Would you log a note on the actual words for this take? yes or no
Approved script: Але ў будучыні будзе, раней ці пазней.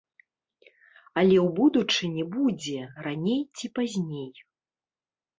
no